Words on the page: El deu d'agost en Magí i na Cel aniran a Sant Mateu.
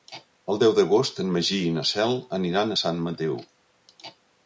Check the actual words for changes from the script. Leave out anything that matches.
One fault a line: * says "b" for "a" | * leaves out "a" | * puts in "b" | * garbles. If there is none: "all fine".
all fine